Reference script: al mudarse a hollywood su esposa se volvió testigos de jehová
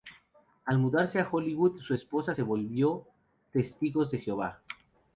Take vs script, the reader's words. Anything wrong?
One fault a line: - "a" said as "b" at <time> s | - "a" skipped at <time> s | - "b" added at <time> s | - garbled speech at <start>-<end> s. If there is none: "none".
none